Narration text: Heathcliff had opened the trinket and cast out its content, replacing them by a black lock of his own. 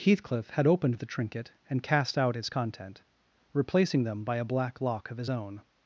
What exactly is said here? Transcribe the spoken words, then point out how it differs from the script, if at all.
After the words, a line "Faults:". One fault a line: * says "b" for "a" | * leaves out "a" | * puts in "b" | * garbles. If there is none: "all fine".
Heathcliff had opened the trinket and cast out its content, replacing them by a black lock of his own.
Faults:
all fine